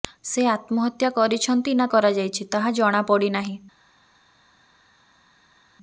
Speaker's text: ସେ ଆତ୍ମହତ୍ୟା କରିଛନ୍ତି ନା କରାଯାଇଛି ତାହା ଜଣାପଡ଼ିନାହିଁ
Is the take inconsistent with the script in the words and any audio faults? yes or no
no